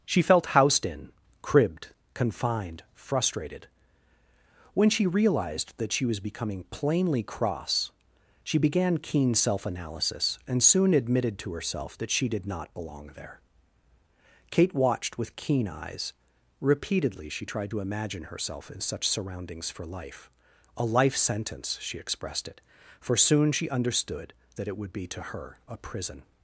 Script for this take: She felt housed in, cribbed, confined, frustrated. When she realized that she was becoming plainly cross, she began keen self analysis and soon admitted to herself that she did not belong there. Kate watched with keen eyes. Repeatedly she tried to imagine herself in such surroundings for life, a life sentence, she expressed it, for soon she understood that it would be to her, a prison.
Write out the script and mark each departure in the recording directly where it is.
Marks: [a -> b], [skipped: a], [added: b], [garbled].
She felt housed in, cribbed, confined, frustrated. When she realized that she was becoming plainly cross, she began keen self analysis and soon admitted to herself that she did not belong there. Kate watched with keen eyes. Repeatedly she tried to imagine herself in such surroundings for life, a life sentence, she expressed it, for soon she understood that it would be to her, a prison.